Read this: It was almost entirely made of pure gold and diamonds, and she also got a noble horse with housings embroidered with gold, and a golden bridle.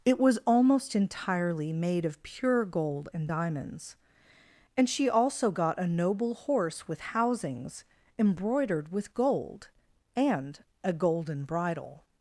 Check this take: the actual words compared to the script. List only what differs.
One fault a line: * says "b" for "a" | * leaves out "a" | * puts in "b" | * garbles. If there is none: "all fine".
all fine